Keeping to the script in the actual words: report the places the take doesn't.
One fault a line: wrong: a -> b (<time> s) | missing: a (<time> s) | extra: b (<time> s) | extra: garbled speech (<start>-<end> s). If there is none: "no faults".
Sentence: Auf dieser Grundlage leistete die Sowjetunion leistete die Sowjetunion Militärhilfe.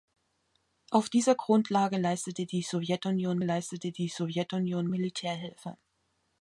no faults